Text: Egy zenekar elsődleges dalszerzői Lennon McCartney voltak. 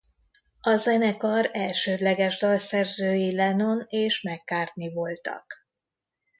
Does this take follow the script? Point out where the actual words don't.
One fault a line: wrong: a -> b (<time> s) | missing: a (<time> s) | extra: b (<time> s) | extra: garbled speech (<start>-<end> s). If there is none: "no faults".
wrong: Egy -> A (0.6 s)
extra: és (3.9 s)